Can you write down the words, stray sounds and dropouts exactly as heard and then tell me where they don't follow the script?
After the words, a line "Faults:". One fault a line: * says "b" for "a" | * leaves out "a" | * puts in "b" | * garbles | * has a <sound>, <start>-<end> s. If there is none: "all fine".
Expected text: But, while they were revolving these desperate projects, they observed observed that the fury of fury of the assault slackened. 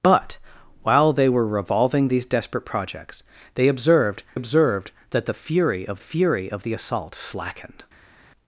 But, while they were revolving these desperate projects, they observed observed that the fury of fury of the assault slackened.
Faults:
all fine